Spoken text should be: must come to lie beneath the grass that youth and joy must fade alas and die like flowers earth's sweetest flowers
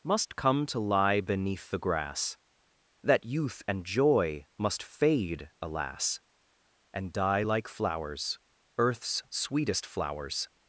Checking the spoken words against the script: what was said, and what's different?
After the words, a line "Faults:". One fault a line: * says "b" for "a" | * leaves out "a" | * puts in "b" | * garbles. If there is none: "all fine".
must come to lie beneath the grass that youth and joy must fade alas and die like flowers earth's sweetest flowers
Faults:
all fine